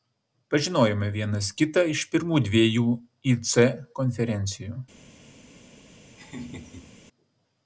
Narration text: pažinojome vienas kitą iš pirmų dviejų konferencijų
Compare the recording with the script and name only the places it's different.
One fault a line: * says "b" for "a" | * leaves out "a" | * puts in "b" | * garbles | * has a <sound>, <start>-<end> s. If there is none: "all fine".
* puts in "ic"
* has a laugh, 6.2-6.9 s